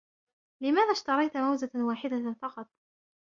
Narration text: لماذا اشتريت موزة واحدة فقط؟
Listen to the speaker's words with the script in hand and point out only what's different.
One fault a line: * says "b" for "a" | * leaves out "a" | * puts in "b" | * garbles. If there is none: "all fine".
all fine